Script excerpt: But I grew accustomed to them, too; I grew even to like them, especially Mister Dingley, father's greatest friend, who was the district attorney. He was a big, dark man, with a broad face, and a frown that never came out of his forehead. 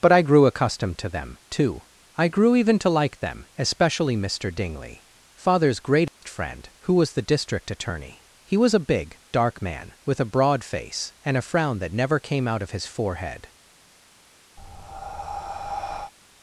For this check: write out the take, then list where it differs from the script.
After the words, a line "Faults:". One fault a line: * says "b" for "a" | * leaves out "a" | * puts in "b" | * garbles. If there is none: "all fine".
But I grew accustomed to them, too; I grew even to like them, especially Mister Dingley, father's greatest friend, who was the district attorney. He was a big, dark man, with a broad face, and a frown that never came out of his forehead.
Faults:
all fine